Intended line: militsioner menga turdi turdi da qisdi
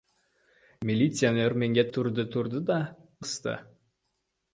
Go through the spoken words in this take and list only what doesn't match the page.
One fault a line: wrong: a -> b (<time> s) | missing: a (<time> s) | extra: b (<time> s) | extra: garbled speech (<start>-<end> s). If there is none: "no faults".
no faults